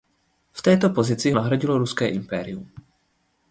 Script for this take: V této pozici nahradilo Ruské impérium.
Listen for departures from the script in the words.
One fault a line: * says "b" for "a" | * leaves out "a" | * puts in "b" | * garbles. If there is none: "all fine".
all fine